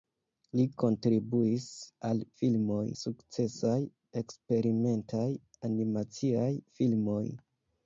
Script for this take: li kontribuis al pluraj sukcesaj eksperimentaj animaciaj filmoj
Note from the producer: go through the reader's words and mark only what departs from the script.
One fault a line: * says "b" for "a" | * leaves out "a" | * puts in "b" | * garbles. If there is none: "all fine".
* says "filmoj" for "pluraj"